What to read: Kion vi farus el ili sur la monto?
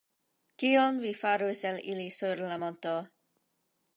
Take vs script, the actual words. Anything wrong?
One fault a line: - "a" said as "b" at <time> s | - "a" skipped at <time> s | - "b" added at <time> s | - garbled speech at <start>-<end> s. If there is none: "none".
none